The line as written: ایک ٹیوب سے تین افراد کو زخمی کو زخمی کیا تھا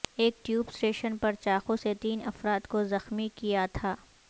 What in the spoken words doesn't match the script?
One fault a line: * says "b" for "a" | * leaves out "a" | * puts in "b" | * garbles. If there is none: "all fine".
* puts in "سٹیشن پر چاقو"
* leaves out "کو زخمی"